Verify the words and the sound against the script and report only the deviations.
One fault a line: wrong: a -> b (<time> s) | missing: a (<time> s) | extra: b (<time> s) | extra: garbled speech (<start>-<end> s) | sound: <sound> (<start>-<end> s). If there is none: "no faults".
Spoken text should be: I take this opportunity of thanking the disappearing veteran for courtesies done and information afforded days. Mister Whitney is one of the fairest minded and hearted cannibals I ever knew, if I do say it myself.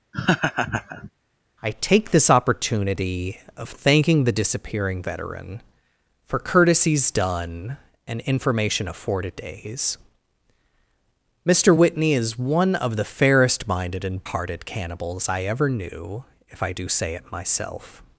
sound: laugh (0.1-1.1 s)